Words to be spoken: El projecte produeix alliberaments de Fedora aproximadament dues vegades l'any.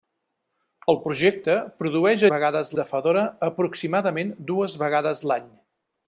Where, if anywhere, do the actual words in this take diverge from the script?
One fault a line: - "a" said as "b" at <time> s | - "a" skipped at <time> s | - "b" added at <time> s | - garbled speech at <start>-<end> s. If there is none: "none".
- "alliberaments" said as "vegades" at 2.3 s